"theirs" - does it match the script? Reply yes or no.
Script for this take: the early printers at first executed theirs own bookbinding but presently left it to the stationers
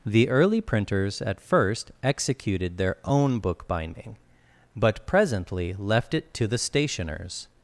no